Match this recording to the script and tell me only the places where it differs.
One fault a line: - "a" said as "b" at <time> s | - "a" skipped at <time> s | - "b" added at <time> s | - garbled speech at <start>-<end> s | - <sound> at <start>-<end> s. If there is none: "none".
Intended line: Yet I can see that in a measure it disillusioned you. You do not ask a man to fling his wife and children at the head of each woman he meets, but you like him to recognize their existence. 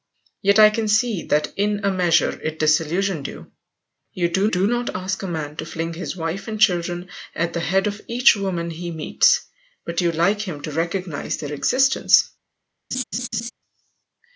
- "do" added at 4.5 s
- laugh at 12.9-13.5 s